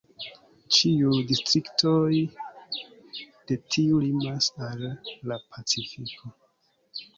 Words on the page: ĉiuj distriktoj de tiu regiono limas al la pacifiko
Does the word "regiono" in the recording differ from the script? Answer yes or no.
yes